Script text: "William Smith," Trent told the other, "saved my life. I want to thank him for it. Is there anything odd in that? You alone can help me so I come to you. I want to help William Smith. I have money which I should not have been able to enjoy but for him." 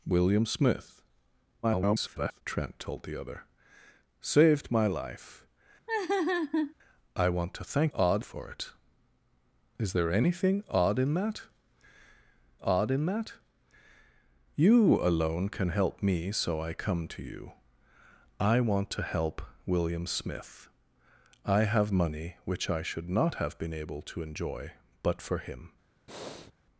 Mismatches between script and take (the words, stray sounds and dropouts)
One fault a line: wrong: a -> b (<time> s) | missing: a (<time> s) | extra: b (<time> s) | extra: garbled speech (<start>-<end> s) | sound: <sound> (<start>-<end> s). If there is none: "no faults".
extra: garbled speech (1.6-2.4 s)
sound: laugh (5.9-6.7 s)
wrong: him -> odd (7.9 s)
extra: odd in that (12.6 s)
sound: breath (26.1-26.5 s)